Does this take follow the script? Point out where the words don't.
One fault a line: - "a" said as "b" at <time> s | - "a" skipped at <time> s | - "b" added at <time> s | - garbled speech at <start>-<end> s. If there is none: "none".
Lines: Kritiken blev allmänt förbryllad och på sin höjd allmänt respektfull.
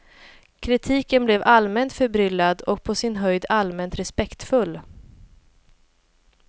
none